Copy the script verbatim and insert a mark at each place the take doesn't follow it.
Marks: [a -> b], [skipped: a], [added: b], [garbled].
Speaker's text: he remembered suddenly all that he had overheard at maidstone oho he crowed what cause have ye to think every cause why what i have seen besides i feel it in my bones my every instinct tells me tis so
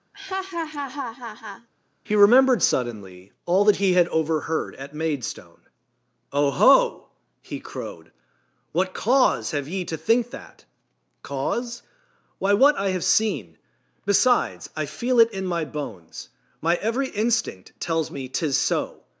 he remembered suddenly all that he had overheard at maidstone oho he crowed what cause have ye to think [every -> that] cause why what i have seen besides i feel it in my bones my every instinct tells me tis so